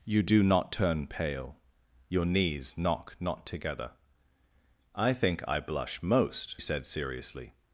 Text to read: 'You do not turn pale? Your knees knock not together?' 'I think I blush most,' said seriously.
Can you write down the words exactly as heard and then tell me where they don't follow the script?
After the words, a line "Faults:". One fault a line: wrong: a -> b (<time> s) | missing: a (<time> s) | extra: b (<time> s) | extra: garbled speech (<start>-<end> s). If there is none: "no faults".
'You do not turn pale? Your knees knock not together?' 'I think I blush most,' said seriously.
Faults:
no faults